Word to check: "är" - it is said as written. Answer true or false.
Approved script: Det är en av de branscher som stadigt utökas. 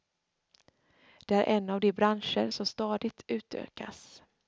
true